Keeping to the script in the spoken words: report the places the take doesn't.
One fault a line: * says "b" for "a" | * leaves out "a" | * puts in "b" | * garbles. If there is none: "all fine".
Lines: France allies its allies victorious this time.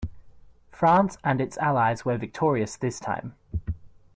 * says "and" for "allies"
* puts in "were"